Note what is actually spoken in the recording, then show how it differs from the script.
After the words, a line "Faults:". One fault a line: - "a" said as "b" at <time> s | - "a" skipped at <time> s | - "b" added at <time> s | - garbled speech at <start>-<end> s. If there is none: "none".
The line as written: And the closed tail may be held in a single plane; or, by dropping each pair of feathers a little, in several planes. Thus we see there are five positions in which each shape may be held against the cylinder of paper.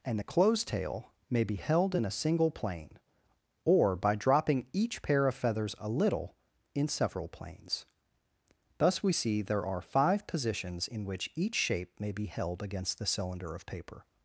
And the closed tail may be held in a single plane; or, by dropping each pair of feathers a little, in several planes. Thus we see there are five positions in which each shape may be held against the cylinder of paper.
Faults:
none